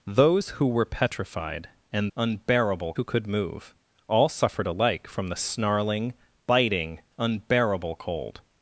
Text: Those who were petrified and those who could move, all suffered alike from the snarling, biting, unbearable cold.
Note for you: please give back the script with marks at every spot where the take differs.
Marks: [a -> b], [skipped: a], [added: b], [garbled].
Those who were petrified and [those -> unbearable] who could move, all suffered alike from the snarling, biting, unbearable cold.